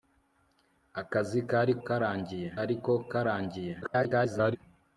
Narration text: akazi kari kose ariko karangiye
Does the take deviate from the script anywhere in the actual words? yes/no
yes